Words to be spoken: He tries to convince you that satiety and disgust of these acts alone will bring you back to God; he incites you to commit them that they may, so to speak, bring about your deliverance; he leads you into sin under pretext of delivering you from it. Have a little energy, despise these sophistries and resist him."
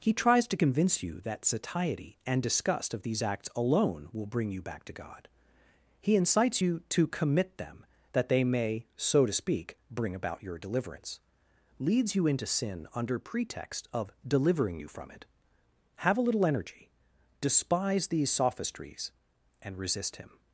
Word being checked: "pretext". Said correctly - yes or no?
yes